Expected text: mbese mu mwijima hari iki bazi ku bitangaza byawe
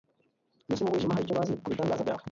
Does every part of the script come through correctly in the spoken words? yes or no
no